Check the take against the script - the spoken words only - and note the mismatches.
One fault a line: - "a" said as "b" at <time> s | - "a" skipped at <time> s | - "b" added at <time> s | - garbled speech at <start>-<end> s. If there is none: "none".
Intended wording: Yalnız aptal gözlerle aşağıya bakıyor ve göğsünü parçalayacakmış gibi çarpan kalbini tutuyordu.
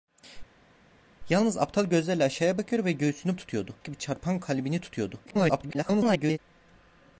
- "parçalayacakmış" said as "tutuyordu" at 3.4 s
- garbled speech at 5.3-6.4 s